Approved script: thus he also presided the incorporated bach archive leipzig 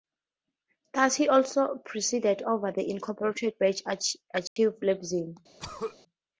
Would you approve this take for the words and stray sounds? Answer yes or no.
no